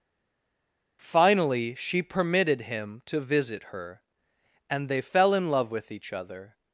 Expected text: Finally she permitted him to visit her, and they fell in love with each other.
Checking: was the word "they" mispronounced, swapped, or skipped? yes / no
no